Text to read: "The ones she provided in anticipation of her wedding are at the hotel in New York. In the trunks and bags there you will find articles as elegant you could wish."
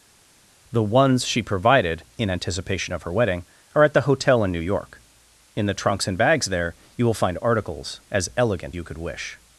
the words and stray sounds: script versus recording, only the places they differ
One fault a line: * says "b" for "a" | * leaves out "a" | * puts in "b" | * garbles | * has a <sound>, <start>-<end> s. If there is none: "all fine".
all fine